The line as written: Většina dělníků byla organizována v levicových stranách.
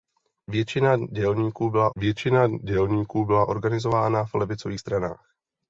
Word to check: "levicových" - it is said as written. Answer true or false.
true